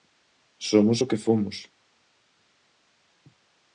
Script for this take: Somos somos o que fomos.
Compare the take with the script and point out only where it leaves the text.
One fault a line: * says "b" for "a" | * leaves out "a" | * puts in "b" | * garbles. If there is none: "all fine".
* leaves out "somos"